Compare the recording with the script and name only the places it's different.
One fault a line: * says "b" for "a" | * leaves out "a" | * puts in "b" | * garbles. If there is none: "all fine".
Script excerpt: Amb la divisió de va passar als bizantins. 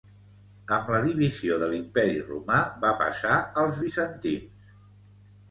* puts in "l'imperi romà"